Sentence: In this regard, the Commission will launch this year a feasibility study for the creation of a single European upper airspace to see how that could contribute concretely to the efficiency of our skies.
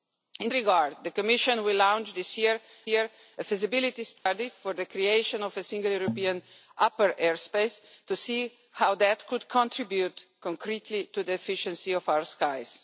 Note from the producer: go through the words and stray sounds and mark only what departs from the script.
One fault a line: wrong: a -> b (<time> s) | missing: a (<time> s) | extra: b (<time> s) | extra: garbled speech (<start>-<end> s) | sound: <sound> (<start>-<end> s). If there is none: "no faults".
missing: this (0.5 s)
extra: year (2.9 s)
sound: dropout (4.2-4.3 s)